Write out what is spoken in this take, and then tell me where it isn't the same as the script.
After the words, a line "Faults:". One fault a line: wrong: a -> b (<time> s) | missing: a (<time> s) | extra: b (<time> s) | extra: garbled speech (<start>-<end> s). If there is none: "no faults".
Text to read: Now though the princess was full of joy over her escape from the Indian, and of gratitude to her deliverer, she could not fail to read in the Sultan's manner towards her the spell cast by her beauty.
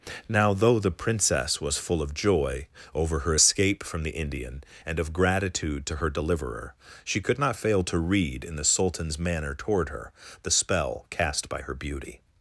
Now though the princess was full of joy over her escape from the Indian, and of gratitude to her deliverer, she could not fail to read in the Sultan's manner toward her the spell cast by her beauty.
Faults:
wrong: towards -> toward (9.5 s)